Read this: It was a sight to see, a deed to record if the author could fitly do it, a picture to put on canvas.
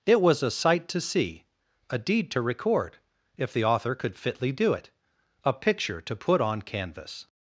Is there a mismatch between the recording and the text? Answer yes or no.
no